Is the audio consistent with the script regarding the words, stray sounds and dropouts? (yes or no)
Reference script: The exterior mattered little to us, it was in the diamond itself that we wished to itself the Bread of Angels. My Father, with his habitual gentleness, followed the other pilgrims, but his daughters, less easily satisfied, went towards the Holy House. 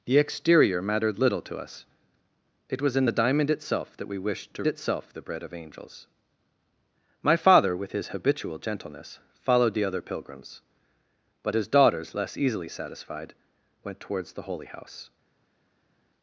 yes